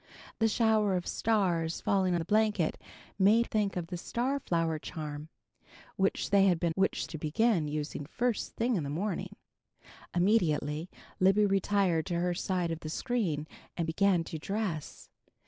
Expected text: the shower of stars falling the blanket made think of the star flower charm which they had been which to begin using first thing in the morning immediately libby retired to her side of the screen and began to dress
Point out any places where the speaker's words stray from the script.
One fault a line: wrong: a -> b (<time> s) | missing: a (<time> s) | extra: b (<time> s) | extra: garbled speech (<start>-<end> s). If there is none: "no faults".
no faults